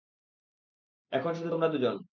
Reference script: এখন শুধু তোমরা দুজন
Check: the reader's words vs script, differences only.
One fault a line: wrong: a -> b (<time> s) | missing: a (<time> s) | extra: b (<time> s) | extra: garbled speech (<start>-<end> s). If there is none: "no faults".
no faults